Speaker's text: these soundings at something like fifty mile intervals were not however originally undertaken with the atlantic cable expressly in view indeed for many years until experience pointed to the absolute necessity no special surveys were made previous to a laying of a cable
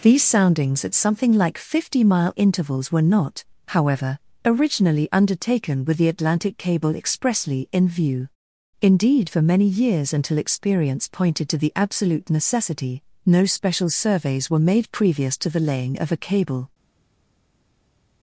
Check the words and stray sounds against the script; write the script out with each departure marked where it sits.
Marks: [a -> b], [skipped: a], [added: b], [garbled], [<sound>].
these soundings at something like fifty mile intervals were not however originally undertaken with the atlantic cable expressly in view indeed for many years until experience pointed to the absolute necessity no special surveys were made previous to [a -> the] laying of a cable